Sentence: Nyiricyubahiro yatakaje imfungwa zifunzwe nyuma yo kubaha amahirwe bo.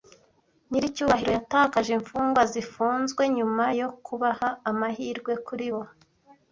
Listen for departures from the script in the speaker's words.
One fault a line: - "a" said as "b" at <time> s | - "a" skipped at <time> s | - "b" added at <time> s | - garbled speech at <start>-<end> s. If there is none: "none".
- "kuri" added at 5.5 s